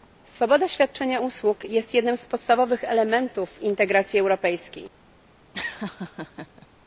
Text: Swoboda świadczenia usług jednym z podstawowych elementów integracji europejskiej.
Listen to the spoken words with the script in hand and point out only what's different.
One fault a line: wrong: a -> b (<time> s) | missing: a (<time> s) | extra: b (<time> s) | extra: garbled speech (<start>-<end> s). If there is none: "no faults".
extra: jest (1.7 s)